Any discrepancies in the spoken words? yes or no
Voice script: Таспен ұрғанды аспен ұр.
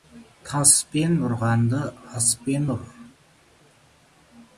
no